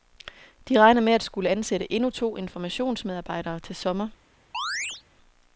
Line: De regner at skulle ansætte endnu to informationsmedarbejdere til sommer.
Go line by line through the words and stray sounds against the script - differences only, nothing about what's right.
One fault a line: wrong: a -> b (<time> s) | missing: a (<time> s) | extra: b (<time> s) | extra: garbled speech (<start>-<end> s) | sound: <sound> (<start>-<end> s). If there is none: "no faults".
extra: med (1.0 s)
sound: chirp (4.5-5.0 s)